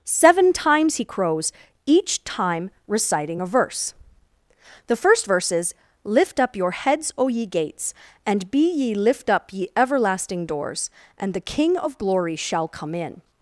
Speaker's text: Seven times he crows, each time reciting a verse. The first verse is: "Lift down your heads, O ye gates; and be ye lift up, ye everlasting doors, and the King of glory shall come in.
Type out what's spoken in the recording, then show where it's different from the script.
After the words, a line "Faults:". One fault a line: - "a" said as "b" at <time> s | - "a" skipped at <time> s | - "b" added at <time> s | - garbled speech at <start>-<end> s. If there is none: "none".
Seven times he crows, each time reciting a verse. The first verse is: "Lift up your heads, O ye gates; and be ye lift up, ye everlasting doors, and the King of glory shall come in.
Faults:
- "down" said as "up" at 6.4 s